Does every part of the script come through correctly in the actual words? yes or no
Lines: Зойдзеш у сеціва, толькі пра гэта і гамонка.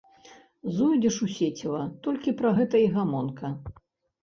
yes